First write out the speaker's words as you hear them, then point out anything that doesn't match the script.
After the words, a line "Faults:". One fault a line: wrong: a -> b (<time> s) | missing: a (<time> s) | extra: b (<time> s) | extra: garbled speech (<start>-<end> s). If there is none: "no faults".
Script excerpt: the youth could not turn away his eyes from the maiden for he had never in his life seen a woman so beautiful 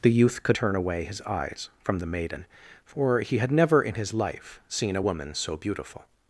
the youth could turn away his eyes from the maiden for he had never in his life seen a woman so beautiful
Faults:
missing: not (0.6 s)